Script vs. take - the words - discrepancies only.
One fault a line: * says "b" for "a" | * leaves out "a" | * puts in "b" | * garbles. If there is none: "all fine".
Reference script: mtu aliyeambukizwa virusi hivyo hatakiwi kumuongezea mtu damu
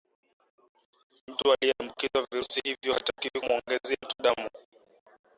all fine